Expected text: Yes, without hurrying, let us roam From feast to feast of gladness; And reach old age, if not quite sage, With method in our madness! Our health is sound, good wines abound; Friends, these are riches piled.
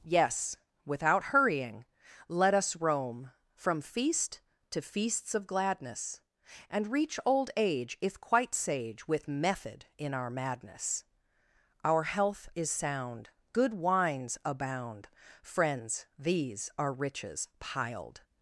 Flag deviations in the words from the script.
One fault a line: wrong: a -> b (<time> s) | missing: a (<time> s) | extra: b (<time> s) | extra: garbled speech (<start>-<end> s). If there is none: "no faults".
wrong: feast -> feasts (4.8 s)
missing: not (8.2 s)